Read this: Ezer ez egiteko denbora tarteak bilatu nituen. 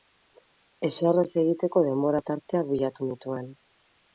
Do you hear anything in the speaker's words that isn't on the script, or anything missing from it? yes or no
no